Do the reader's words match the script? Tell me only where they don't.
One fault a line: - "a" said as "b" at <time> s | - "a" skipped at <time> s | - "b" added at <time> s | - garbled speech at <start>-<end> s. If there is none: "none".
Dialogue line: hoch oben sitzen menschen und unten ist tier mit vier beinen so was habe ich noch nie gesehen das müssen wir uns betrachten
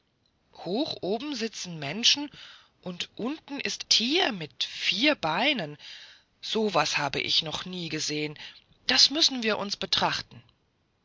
none